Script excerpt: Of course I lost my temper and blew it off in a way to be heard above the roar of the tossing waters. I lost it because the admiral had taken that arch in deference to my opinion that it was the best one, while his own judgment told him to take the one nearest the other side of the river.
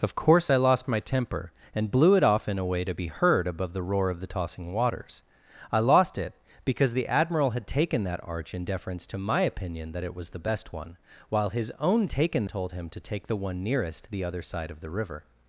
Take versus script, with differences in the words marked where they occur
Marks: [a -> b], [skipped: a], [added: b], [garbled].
Of course I lost my temper and blew it off in a way to be heard above the roar of the tossing waters. I lost it because the admiral had taken that arch in deference to my opinion that it was the best one, while his own [judgment -> taken] told him to take the one nearest the other side of the river.